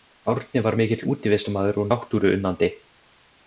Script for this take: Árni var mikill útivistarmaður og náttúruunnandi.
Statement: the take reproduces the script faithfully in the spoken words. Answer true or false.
true